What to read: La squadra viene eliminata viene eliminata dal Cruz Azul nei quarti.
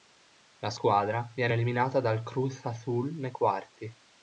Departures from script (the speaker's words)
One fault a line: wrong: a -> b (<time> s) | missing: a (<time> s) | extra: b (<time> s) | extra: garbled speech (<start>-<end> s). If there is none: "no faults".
missing: viene eliminata (2.0 s)